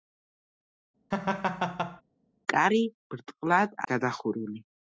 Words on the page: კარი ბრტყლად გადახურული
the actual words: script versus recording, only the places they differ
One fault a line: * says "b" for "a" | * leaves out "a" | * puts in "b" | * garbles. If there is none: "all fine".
all fine